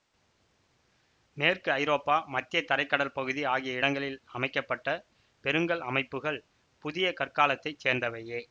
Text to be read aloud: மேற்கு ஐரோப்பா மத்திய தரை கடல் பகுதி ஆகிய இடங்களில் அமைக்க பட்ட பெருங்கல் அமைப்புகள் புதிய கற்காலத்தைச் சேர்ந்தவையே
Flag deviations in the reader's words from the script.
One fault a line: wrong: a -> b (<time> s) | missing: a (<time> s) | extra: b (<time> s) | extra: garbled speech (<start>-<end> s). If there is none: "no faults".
no faults